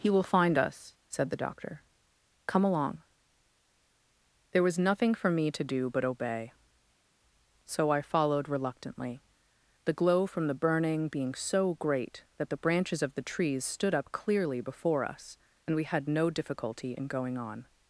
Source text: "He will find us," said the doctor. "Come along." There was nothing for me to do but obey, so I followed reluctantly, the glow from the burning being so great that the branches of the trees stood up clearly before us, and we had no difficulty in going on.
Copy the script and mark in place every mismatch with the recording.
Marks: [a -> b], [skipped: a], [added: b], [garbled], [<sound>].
"He will find us," said the doctor. "Come along." There was nothing for me to do but obey, so I followed reluctantly, the glow from the burning being so great that the branches of the trees stood up clearly before us, and we had no difficulty in going on.